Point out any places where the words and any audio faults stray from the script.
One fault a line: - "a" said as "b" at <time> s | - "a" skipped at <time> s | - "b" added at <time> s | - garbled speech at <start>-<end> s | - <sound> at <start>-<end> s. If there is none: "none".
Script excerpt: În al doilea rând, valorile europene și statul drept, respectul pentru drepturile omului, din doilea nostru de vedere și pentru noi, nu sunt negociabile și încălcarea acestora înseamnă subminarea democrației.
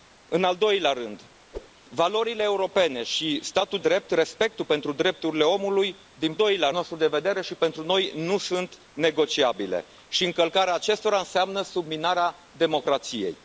- whoosh at 1.5-1.7 s